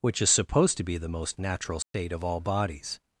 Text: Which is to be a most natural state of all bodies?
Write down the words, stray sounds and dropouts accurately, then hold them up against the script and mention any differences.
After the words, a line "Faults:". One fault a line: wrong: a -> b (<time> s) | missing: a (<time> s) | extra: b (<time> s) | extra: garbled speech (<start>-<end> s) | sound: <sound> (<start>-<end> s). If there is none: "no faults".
Which is supposed to be the most natural state of all bodies?
Faults:
extra: supposed (0.3 s)
wrong: a -> the (1.0 s)
sound: dropout (1.8-1.9 s)